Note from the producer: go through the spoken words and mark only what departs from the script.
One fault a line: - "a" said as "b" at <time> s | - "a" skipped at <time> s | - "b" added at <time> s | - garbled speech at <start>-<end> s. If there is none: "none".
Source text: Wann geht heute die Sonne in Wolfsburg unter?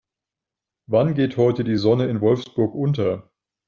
none